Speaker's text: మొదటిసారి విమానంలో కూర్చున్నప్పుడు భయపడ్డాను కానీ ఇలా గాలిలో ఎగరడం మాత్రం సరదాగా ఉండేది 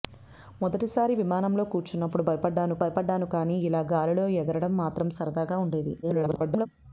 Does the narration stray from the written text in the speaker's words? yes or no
yes